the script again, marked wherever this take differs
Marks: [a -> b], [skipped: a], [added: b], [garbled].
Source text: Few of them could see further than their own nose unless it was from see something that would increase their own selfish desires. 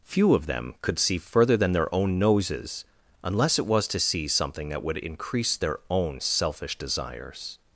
Few of them could see further than their own [nose -> noses] unless it was [from -> to] see something that would increase their own selfish desires.